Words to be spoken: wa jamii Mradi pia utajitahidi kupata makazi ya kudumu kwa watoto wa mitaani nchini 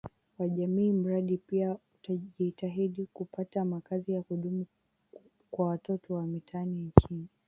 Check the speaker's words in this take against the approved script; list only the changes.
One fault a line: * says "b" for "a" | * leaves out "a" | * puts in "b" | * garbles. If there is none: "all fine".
all fine